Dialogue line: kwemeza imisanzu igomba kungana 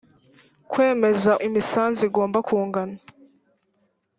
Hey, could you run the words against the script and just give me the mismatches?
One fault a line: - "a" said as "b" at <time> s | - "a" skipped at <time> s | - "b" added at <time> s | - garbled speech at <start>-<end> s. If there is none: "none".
none